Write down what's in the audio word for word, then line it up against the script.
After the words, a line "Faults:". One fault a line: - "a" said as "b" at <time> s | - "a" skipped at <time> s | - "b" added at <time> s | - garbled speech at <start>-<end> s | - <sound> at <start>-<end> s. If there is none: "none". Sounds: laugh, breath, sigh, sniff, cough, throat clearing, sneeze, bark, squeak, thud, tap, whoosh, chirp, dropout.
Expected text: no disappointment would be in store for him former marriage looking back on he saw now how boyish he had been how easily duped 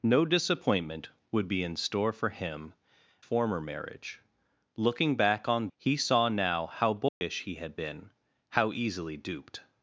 no disappointment would be in store for him former marriage looking back on he saw now how boyish he had been how easily duped
Faults:
- dropout at 7.1-7.2 s